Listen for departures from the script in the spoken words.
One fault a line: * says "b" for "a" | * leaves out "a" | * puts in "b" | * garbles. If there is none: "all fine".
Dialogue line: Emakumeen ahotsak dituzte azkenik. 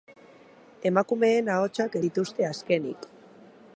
all fine